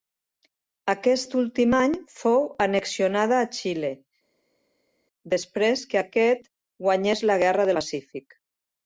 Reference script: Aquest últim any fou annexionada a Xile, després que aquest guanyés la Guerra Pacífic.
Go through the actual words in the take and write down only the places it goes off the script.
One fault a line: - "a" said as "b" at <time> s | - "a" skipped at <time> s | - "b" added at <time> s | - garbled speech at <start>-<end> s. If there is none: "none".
none